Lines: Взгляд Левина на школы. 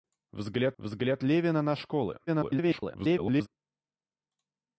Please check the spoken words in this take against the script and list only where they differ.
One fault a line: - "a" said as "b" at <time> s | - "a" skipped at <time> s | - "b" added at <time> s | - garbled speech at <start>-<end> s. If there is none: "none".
- "взгляд" added at 0.8 s
- garbled speech at 2.3-3.5 s